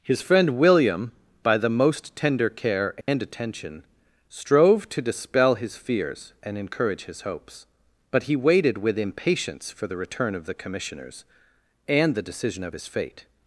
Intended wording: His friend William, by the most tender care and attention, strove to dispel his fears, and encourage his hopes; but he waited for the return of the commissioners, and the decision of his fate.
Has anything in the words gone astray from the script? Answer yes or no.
yes